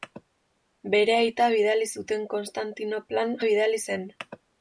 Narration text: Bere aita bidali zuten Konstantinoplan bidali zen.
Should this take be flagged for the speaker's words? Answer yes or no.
no